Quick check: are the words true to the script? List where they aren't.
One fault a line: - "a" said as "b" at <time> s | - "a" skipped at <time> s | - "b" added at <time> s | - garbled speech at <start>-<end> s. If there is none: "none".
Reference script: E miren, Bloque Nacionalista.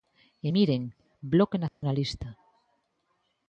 none